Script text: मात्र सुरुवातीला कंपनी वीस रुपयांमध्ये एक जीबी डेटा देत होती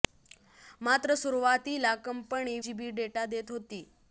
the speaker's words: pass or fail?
fail